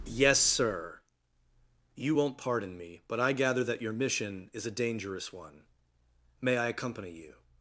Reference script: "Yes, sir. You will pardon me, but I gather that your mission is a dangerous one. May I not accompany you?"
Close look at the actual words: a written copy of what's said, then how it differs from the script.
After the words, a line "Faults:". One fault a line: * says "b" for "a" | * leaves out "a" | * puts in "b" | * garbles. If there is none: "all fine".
"Yes, sir. You won't pardon me, but I gather that your mission is a dangerous one. May I accompany you?"
Faults:
* says "won't" for "will"
* leaves out "not"